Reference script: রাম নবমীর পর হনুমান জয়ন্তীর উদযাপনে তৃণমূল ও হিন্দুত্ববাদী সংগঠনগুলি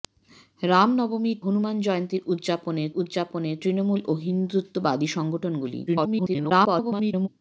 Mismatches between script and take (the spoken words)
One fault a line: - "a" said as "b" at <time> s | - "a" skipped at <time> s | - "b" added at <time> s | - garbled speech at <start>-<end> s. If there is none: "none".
- "পর" skipped at 1.4 s
- "উদযাপনে" added at 2.9 s
- garbled speech at 5.9-7.3 s